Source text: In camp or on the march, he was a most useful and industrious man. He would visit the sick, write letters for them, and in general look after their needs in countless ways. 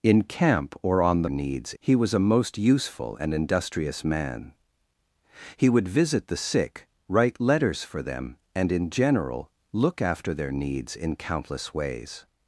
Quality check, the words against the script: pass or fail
fail